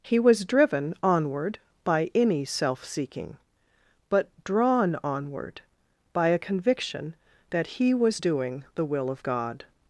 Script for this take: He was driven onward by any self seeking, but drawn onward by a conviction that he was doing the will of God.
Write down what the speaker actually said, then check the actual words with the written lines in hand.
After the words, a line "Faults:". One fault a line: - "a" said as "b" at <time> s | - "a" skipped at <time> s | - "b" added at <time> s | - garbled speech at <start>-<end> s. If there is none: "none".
He was driven onward by any self seeking, but drawn onward by a conviction that he was doing the will of God.
Faults:
none